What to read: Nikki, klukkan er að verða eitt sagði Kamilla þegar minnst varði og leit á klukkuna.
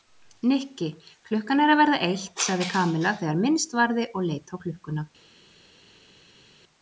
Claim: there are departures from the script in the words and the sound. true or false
false